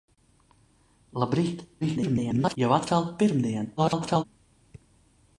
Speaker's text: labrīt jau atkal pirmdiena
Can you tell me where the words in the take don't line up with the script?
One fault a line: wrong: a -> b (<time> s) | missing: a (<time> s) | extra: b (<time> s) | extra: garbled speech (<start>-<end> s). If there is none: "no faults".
extra: garbled speech (1.8-2.6 s)
extra: garbled speech (3.8-4.2 s)